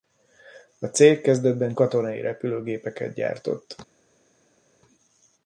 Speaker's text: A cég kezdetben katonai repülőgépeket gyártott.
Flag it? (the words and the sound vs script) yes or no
no